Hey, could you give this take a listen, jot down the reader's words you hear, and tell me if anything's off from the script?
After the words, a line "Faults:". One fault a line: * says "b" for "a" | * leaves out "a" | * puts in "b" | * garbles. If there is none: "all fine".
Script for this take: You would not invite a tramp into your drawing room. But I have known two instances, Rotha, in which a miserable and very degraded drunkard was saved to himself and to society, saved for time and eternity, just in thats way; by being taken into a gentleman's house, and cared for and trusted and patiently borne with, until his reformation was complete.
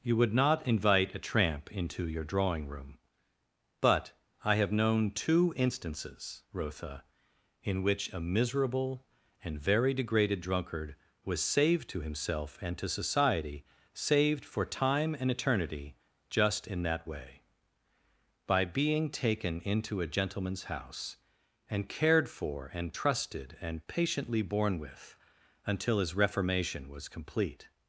You would not invite a tramp into your drawing room. But I have known two instances, Rotha, in which a miserable and very degraded drunkard was saved to himself and to society, saved for time and eternity, just in that way; by being taken into a gentleman's house, and cared for and trusted and patiently borne with, until his reformation was complete.
Faults:
* says "that" for "thats"